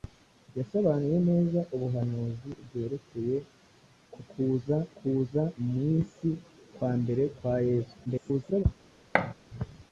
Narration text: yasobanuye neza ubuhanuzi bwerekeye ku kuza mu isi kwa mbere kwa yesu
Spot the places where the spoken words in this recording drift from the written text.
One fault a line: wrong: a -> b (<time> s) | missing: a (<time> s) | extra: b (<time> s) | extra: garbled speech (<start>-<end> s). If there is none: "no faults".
extra: kuza (5.0 s)
extra: garbled speech (8.1-8.6 s)